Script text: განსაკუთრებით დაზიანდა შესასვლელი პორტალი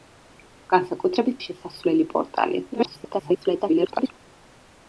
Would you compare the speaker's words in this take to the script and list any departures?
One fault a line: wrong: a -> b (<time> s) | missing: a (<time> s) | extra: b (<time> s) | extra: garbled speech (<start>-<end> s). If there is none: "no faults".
missing: დაზიანდა (1.4 s)
extra: garbled speech (2.7-4.1 s)